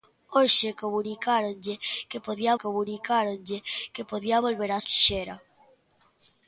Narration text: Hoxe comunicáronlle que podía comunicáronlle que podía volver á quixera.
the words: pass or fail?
pass